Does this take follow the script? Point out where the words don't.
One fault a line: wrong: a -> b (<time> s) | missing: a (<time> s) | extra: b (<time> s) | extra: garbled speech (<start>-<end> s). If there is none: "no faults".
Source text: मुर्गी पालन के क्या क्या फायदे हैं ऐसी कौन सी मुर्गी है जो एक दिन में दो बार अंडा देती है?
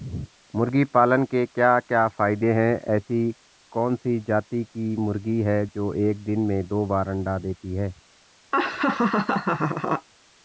extra: जाती की (4.2 s)